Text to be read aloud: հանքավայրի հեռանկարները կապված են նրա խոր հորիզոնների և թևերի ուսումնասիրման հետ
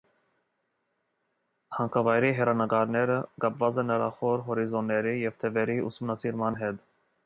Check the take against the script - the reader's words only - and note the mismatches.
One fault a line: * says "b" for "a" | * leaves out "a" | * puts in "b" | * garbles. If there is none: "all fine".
all fine